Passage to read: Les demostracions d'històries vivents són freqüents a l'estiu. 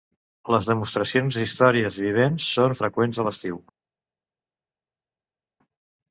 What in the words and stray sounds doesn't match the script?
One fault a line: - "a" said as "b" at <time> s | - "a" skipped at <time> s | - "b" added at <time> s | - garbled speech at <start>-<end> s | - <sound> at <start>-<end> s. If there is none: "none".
none